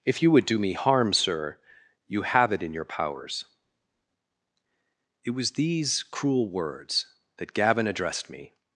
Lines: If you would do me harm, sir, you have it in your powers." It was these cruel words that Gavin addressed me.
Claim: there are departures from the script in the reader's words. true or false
false